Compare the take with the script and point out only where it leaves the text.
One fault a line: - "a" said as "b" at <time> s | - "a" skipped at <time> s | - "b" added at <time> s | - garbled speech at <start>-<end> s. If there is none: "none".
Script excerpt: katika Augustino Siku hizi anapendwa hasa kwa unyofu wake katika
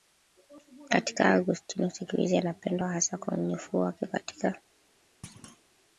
none